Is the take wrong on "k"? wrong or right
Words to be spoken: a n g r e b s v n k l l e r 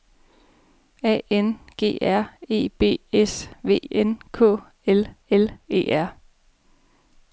right